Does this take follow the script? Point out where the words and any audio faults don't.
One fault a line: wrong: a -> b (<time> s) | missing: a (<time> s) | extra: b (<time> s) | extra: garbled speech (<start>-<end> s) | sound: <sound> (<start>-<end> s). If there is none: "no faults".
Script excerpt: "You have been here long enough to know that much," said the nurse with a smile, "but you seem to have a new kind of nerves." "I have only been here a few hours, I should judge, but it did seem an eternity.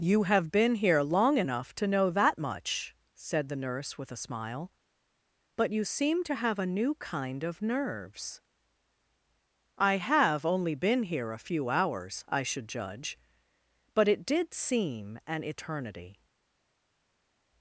no faults